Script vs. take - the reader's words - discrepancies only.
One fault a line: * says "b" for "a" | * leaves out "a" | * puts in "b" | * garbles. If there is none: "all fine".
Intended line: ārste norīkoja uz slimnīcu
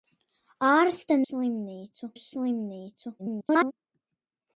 * says "slimnīcu" for "norīkoja"
* garbles